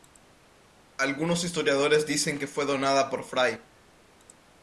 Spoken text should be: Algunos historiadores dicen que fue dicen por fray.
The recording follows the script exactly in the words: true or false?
false